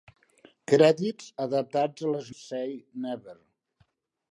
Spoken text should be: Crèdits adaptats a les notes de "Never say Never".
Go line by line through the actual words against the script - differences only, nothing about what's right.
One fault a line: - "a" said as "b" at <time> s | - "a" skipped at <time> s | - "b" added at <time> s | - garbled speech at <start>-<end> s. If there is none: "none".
- "notes de Never" skipped at 2.3 s